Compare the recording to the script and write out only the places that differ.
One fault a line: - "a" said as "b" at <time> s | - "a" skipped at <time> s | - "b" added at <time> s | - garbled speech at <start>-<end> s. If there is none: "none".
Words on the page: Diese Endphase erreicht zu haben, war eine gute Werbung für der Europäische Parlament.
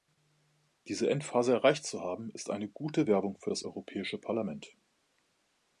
- "war" said as "ist" at 2.3 s
- "der" said as "das" at 3.5 s